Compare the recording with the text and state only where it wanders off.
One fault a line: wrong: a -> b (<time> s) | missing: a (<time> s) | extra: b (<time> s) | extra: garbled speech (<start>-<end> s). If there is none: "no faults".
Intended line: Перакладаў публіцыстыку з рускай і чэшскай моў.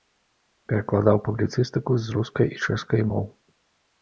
no faults